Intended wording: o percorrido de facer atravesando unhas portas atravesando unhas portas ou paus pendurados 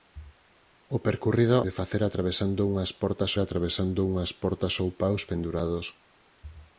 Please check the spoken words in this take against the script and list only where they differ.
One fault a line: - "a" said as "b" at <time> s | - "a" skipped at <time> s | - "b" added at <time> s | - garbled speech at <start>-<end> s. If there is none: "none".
none